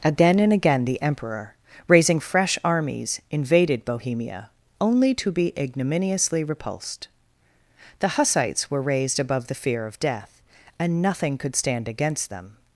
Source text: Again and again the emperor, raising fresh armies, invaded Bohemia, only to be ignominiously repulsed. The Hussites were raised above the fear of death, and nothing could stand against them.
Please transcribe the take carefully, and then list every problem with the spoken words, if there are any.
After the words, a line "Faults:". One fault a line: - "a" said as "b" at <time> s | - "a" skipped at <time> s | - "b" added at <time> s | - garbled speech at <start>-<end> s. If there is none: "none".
Again and again the emperor, raising fresh armies, invaded Bohemia, only to be ignominiously repulsed. The Hussites were raised above the fear of death, and nothing could stand against them.
Faults:
none